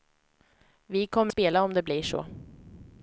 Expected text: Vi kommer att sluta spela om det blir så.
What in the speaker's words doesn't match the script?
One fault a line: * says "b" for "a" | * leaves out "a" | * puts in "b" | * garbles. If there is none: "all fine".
* leaves out "att sluta"